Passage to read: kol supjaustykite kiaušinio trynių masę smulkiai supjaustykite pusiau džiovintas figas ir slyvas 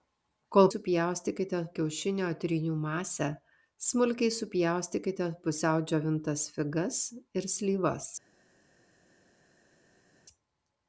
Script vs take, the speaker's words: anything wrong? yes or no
no